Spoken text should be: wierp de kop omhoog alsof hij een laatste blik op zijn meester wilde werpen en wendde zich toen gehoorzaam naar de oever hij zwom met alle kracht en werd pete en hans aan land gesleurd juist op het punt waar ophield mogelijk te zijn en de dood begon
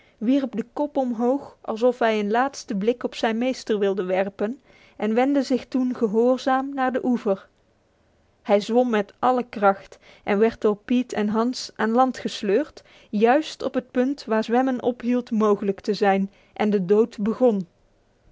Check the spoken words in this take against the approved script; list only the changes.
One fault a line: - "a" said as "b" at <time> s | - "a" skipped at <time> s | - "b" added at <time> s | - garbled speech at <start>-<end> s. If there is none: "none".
- "door" added at 10.6 s
- "zwemmen" added at 14.4 s